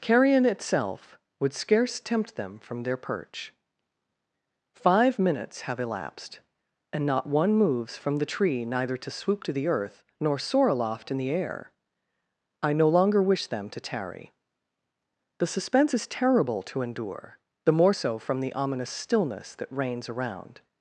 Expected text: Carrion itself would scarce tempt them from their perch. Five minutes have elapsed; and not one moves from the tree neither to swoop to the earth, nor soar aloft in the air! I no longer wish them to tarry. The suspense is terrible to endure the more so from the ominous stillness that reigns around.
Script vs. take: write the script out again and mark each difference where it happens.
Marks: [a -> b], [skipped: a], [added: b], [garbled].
Carrion itself would scarce tempt them from their perch. Five minutes have elapsed; and not one moves from the tree neither to swoop to the earth, nor soar aloft in the air! I no longer wish them to tarry. The suspense is terrible to endure the more so from the ominous stillness that reigns around.